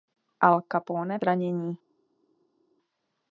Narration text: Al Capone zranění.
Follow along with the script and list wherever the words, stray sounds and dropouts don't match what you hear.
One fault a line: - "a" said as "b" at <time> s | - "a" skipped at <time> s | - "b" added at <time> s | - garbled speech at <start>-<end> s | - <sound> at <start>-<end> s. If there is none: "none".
none